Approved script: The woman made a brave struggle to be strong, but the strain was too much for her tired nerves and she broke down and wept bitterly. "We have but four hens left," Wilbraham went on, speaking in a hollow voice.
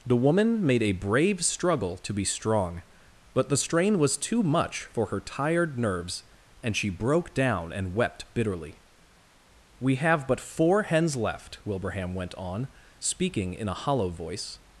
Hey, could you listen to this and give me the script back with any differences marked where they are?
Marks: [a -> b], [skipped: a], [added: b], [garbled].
The woman made a brave struggle to be strong, but the strain was too much for her tired nerves and she broke down and wept bitterly. "We have but four hens left," Wilbraham went on, speaking in a hollow voice.